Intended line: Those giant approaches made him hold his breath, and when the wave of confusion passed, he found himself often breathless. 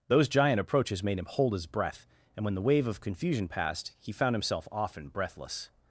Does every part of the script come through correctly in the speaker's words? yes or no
yes